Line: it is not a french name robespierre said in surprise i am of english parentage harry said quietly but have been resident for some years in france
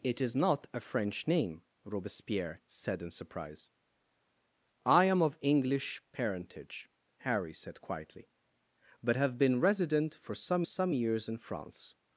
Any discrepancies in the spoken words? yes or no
yes